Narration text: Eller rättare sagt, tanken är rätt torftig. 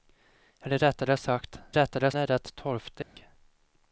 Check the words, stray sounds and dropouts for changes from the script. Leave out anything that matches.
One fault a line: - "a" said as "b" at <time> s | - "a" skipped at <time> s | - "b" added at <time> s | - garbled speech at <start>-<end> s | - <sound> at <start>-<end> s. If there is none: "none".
- "tanken" said as "rättare" at 1.7 s
- dropout at 3.0-3.2 s